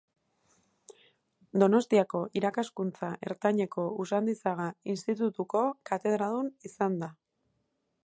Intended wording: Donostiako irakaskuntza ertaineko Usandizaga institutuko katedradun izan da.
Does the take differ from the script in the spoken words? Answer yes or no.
no